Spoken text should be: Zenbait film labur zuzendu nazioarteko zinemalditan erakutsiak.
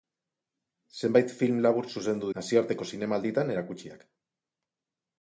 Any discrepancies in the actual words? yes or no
no